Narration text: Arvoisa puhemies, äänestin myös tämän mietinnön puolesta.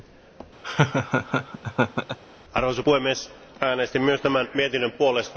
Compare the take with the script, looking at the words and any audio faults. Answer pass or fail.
fail